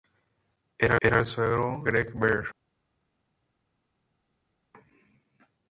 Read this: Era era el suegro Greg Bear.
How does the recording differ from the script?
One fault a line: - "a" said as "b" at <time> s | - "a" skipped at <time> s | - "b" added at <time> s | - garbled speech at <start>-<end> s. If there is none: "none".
none